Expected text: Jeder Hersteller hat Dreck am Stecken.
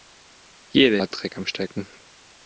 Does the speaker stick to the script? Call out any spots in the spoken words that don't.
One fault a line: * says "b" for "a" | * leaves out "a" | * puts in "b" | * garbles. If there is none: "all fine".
* leaves out "Hersteller"